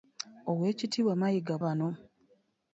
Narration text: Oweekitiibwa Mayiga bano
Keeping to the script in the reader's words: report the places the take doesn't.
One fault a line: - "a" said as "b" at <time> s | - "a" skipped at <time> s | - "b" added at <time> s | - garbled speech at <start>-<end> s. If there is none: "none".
none